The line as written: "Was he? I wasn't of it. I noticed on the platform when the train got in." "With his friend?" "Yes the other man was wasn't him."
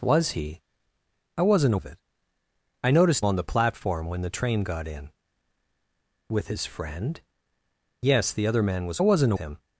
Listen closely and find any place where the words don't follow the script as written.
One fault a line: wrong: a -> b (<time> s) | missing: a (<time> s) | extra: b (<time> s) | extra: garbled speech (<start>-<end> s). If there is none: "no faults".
no faults